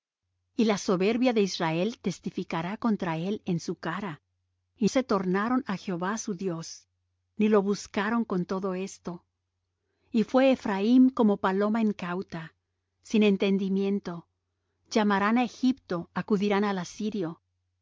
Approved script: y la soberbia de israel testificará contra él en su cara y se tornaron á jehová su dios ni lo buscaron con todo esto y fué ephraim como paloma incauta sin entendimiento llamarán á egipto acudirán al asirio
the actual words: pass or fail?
pass